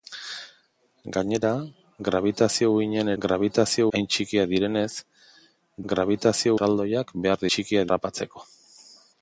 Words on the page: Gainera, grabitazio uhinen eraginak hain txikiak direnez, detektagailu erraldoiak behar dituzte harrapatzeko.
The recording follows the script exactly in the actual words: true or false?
false